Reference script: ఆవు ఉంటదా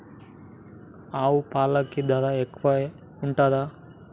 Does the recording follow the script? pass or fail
fail